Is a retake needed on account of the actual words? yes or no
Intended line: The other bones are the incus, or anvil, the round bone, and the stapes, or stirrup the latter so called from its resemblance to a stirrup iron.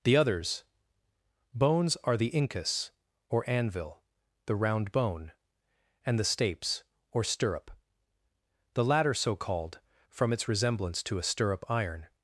yes